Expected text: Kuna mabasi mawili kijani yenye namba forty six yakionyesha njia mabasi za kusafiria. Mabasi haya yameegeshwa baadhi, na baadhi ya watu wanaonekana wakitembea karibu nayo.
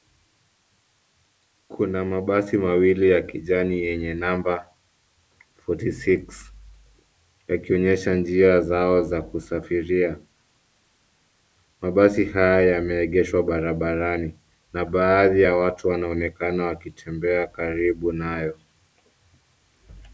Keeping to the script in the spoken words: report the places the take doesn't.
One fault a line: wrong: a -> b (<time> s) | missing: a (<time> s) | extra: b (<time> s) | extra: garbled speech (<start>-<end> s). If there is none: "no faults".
extra: ya (3.1 s)
wrong: mabasi -> zao (8.6 s)
wrong: baadhi -> barabarani (13.4 s)